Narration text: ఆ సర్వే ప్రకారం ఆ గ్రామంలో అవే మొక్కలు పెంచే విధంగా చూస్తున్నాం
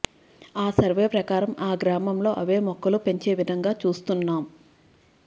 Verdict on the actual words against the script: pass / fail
pass